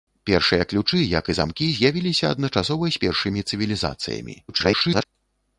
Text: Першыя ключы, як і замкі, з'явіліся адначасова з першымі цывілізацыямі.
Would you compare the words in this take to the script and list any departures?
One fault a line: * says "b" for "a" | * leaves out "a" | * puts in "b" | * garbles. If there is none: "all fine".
* garbles